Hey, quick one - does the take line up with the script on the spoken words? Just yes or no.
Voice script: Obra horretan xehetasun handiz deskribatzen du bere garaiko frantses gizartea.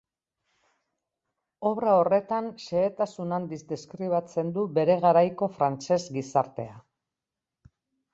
yes